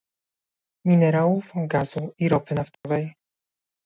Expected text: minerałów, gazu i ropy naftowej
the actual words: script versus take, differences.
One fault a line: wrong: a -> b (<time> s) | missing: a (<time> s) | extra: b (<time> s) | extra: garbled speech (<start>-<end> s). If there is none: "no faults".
no faults